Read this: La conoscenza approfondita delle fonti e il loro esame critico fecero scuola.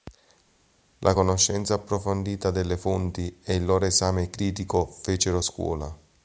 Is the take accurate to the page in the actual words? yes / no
yes